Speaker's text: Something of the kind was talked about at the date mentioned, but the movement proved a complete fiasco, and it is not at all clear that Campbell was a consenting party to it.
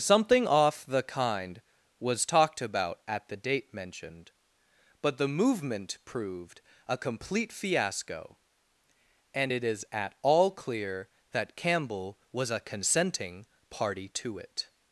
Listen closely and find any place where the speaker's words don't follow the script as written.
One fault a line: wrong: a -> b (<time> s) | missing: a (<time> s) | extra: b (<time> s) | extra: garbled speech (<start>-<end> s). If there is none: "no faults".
wrong: of -> off (0.5 s)
missing: not (9.8 s)